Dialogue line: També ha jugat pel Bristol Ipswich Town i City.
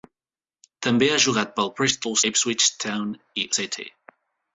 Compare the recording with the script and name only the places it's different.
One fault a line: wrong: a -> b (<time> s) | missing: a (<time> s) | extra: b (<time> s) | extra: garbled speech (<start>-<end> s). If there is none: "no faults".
no faults